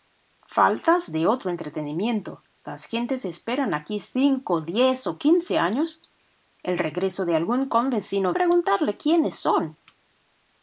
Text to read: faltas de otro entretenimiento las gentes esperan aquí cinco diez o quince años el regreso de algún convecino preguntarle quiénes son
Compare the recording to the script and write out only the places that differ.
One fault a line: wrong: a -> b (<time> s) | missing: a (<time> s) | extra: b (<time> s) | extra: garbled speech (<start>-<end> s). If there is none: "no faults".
no faults